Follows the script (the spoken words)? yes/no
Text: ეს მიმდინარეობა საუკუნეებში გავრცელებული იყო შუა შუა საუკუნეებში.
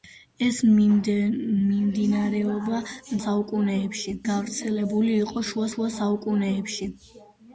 yes